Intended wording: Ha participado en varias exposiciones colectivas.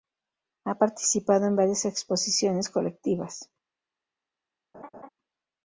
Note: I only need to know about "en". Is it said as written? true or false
true